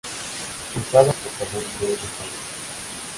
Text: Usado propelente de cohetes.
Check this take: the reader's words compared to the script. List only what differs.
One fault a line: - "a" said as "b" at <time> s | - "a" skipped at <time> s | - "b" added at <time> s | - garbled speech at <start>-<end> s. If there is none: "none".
none